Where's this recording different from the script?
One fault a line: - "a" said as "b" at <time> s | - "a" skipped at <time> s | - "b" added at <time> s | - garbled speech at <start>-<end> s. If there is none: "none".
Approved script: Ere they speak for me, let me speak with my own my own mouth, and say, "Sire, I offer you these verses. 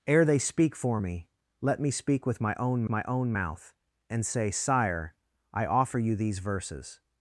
none